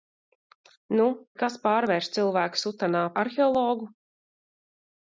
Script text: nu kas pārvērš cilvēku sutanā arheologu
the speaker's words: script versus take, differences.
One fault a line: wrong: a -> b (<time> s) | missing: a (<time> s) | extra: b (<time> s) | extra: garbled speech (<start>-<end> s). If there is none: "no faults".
no faults